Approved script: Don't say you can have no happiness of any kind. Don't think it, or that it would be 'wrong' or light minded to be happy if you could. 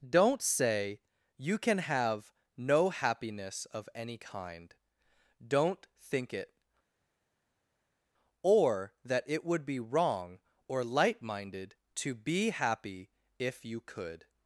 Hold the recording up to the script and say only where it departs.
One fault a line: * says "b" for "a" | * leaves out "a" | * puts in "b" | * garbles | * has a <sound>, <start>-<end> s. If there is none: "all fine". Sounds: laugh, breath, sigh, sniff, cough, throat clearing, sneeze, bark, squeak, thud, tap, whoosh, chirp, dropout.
all fine